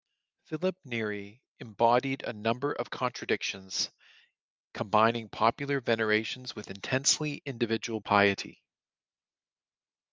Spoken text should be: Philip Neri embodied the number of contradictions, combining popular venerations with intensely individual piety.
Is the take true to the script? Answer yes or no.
no